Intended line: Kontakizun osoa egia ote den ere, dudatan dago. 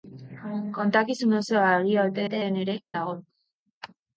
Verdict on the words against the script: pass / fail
fail